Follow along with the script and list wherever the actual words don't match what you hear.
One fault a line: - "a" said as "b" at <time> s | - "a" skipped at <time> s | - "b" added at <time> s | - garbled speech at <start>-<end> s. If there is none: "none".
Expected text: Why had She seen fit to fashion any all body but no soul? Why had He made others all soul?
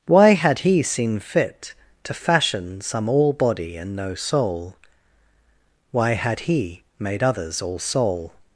- "She" said as "He" at 0.6 s
- "any" said as "some" at 2.8 s
- "but" said as "and" at 3.8 s